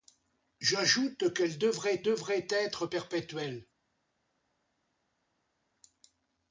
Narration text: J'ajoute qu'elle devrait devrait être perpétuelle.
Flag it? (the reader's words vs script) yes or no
no